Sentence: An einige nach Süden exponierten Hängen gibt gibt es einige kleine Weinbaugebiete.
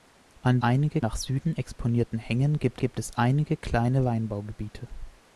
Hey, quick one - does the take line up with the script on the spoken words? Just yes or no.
yes